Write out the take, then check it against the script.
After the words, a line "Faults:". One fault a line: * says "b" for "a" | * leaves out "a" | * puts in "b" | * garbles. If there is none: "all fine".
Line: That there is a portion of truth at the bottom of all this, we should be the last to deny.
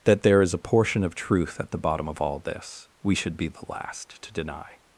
That there is a portion of truth at the bottom of all this, we should be the last to deny.
Faults:
all fine